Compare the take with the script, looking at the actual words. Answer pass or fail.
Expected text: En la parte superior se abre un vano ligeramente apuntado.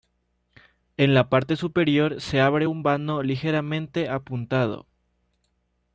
pass